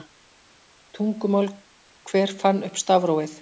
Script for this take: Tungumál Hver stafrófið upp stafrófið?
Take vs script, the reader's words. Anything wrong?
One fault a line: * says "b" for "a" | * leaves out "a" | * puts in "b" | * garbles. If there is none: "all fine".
* says "fann" for "stafrófið"